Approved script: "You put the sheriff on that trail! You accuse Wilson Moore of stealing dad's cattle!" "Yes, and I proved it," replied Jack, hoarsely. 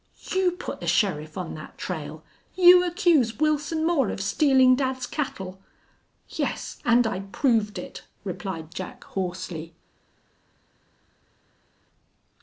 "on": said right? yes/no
yes